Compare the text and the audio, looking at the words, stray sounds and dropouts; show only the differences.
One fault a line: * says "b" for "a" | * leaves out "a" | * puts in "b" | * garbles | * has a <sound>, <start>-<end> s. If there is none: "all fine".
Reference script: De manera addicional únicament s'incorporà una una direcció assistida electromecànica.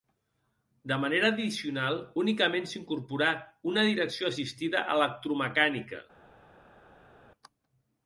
* leaves out "una"